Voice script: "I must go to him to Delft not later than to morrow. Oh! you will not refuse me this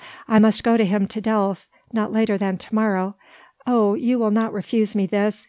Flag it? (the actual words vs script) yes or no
no